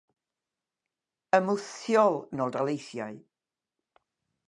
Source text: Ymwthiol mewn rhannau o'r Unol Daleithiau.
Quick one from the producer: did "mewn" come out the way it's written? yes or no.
no